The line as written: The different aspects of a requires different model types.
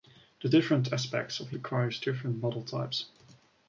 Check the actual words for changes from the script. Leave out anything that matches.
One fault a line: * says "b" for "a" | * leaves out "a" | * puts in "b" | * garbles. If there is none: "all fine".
all fine